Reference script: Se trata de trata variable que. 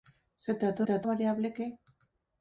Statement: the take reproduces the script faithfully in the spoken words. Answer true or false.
true